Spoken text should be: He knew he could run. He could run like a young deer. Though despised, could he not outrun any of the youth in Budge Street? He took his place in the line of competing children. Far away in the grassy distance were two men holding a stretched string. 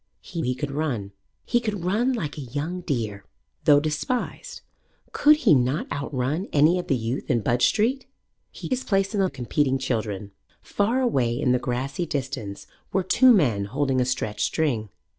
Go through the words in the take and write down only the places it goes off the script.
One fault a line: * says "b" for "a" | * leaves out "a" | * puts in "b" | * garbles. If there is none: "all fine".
* leaves out "knew"
* leaves out "took"
* leaves out "line"